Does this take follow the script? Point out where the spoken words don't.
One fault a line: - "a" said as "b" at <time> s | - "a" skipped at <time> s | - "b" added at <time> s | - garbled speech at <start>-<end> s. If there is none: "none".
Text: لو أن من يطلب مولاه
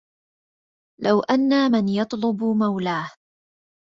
none